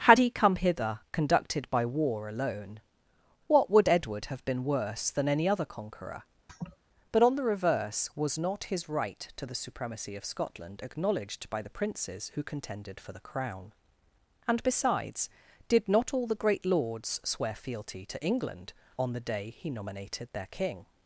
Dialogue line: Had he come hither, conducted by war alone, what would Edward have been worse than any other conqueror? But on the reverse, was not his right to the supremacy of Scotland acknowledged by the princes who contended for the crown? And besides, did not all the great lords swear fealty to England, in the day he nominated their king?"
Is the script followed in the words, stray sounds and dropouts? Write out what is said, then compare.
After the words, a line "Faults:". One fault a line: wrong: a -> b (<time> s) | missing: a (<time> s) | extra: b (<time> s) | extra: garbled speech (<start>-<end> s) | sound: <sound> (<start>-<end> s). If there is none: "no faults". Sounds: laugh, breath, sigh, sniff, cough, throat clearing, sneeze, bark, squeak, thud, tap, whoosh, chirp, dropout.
Had he come hither, conducted by war alone, what would Edward have been worse than any other conqueror? But on the reverse, was not his right to the supremacy of Scotland acknowledged by the princes who contended for the crown? And besides, did not all the great lords swear fealty to England, on the day he nominated their king?"
Faults:
sound: laugh (6.5-6.8 s)
wrong: in -> on (19.0 s)